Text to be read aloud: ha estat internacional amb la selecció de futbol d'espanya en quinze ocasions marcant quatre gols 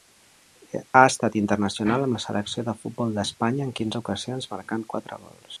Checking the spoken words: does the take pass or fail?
pass